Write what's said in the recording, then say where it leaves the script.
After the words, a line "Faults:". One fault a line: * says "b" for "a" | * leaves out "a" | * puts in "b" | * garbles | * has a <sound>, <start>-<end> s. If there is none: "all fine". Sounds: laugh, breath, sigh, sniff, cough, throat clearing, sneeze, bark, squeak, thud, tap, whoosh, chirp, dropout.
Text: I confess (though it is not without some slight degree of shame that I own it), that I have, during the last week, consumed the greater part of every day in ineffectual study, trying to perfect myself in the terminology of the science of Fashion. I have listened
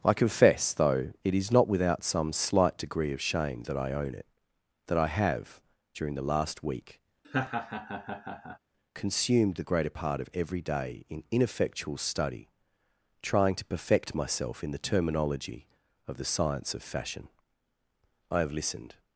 I confess (though it is not without some slight degree of shame that I own it), that I have, during the last week, consumed the greater part of every day in ineffectual study, trying to perfect myself in the terminology of the science of Fashion. I have listened
Faults:
* has a laugh, 7.2-8.6 s